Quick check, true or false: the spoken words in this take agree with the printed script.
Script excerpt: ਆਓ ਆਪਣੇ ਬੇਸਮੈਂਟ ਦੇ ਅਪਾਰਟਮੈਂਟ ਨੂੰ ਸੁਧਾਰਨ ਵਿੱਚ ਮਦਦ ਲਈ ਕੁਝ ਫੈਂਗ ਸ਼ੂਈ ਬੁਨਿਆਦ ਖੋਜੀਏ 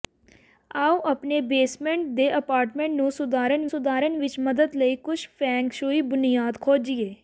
false